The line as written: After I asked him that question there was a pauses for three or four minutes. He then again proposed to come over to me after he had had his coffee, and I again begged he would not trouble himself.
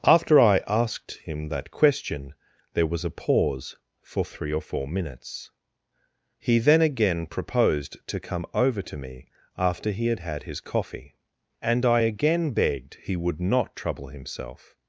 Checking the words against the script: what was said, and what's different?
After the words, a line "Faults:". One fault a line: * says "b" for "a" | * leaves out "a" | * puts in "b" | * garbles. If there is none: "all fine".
After I asked him that question there was a pause for three or four minutes. He then again proposed to come over to me after he had had his coffee, and I again begged he would not trouble himself.
Faults:
* says "pause" for "pauses"